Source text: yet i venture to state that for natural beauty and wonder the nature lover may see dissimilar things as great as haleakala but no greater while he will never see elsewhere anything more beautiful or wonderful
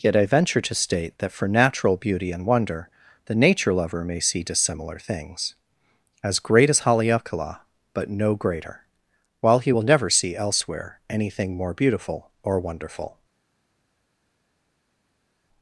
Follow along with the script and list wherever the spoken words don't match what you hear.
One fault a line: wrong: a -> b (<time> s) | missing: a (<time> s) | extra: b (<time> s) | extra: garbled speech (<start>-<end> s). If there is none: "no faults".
no faults